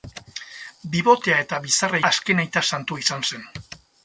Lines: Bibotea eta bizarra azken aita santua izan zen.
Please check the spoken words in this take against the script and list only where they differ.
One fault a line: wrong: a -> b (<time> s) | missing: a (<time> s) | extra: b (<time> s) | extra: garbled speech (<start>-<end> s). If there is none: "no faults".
no faults